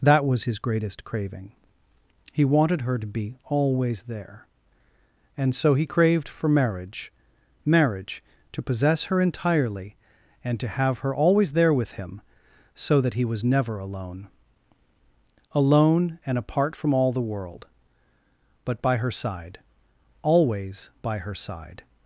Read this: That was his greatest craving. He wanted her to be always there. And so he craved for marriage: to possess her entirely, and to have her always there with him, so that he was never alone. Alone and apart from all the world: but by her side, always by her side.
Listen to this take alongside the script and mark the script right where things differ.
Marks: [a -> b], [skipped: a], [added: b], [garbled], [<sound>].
That was his greatest craving. He wanted her to be always there. And so he craved for marriage: [added: marriage] to possess her entirely, and to have her always there with him, so that he was never alone. Alone and apart from all the world: but by her side, always by her side.